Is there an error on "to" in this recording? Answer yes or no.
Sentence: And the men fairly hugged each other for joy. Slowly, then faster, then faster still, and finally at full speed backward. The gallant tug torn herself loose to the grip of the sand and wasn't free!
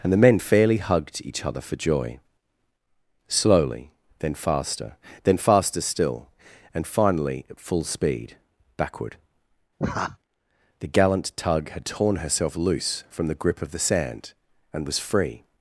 yes